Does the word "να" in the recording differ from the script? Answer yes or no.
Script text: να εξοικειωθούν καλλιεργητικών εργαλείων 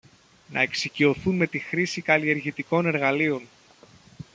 no